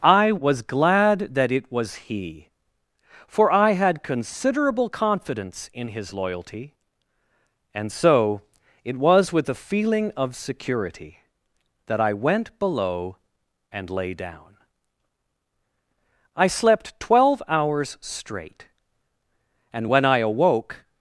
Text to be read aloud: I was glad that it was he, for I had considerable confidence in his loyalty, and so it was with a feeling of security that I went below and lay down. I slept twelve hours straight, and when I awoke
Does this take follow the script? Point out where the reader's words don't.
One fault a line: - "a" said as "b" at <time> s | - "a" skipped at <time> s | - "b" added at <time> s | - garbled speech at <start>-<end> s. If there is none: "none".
none